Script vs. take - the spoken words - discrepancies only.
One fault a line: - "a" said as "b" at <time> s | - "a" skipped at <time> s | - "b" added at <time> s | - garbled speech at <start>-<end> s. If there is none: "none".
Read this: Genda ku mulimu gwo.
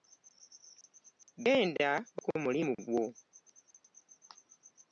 none